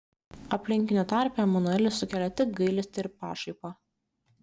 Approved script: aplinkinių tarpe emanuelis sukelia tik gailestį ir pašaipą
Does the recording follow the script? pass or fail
pass